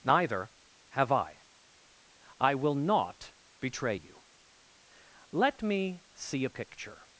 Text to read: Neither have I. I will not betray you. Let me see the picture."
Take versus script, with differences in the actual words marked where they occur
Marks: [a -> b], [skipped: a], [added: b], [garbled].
Neither have I. I will not betray you. Let me see [the -> a] picture."